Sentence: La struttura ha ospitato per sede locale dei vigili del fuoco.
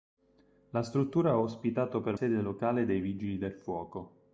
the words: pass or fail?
pass